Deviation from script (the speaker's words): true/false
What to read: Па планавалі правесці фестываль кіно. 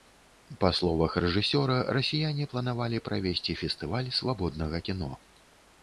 true